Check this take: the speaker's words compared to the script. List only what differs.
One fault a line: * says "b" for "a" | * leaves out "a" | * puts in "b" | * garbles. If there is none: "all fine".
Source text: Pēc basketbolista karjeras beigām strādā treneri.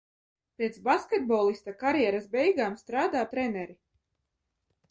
all fine